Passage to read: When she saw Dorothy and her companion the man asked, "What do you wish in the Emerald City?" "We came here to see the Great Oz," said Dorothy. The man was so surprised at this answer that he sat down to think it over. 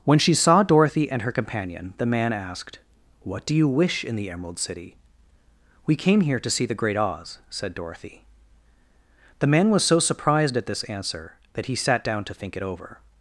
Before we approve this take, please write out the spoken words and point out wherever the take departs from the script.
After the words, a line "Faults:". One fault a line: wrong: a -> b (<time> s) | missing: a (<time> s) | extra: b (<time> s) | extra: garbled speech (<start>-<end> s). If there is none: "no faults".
When she saw Dorothy and her companion the man asked, "What do you wish in the Emerald City?" "We came here to see the Great Oz," said Dorothy. The man was so surprised at this answer that he sat down to think it over.
Faults:
no faults